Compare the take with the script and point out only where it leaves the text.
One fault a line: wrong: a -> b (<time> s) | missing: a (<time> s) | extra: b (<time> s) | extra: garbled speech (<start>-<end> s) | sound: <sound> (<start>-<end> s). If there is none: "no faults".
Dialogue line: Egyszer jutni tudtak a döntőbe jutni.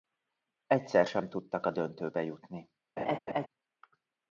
wrong: jutni -> sem (1.1 s)
sound: laugh (3.0-3.5 s)